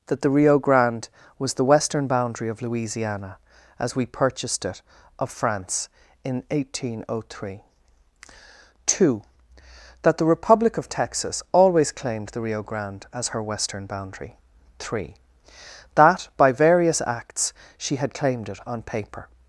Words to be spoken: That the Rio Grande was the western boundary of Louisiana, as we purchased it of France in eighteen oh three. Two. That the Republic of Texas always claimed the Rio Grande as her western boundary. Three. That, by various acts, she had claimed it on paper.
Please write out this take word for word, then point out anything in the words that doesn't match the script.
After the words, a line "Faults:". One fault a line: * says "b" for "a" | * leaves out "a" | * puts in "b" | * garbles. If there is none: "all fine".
That the Rio Grande was the western boundary of Louisiana, as we purchased it of France in eighteen oh three. Two. That the Republic of Texas always claimed the Rio Grande as her western boundary. Three. That, by various acts, she had claimed it on paper.
Faults:
all fine